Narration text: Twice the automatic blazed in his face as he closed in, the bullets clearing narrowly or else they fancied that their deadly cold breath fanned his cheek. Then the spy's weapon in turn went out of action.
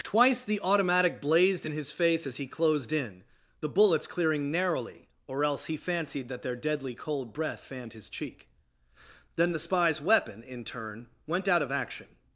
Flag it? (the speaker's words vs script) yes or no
yes